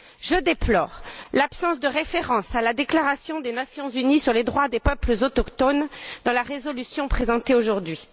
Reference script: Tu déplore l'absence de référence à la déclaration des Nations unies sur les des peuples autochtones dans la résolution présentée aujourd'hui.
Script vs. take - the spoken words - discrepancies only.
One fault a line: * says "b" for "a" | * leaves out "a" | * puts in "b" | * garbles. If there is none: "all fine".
* says "Je" for "Tu"
* puts in "droits"